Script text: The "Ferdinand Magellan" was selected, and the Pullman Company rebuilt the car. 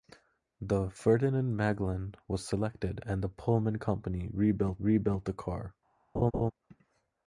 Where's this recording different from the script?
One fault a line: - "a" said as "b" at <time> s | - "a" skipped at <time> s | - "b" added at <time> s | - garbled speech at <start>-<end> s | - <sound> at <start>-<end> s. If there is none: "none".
- "rebuilt" added at 4.8 s
- laugh at 6.1-6.5 s